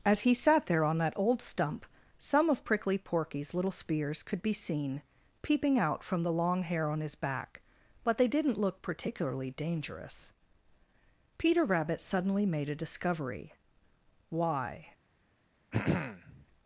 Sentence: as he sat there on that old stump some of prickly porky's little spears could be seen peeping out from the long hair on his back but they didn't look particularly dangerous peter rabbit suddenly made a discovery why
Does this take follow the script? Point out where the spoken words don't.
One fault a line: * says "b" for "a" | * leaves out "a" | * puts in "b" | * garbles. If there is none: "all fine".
all fine